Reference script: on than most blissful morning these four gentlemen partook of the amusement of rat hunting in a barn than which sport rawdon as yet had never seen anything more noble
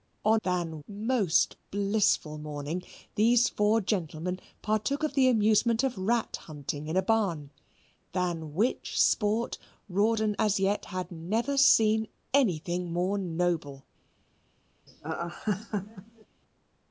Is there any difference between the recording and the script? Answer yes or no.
no